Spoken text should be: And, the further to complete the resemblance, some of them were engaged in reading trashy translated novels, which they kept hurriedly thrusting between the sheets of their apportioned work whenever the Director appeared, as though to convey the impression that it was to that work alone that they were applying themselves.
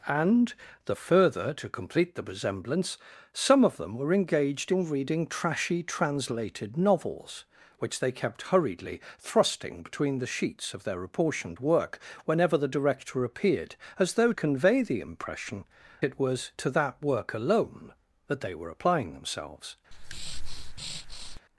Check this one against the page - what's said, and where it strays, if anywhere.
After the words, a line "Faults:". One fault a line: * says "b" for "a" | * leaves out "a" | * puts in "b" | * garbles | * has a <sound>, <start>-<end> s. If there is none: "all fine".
And, the further to complete the resemblance, some of them were engaged in reading trashy translated novels, which they kept hurriedly thrusting between the sheets of their apportioned work whenever the Director appeared, as though convey the impression it was to that work alone that they were applying themselves.
Faults:
* leaves out "to"
* leaves out "that"
* has a breath, 19.9-21.4 s